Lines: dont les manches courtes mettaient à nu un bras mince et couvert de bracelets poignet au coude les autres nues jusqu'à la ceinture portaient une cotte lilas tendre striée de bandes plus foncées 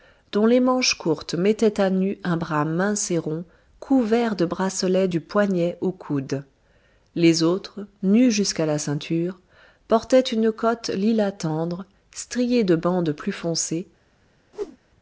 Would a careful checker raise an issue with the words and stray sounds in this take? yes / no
yes